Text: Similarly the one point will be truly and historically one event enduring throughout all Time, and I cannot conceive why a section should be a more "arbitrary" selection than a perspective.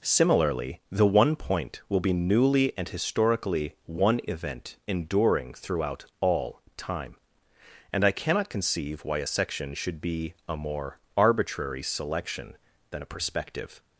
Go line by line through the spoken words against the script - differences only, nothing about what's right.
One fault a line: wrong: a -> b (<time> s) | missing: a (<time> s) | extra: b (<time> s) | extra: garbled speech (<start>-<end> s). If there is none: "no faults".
wrong: truly -> newly (2.1 s)